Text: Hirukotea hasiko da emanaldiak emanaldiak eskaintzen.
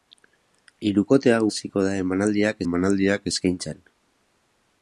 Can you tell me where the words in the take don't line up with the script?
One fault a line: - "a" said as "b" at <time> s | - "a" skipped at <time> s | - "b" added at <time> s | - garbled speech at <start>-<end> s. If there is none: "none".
none